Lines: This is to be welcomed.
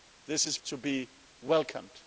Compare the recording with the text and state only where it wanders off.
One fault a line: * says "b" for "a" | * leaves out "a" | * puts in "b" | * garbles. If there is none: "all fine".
all fine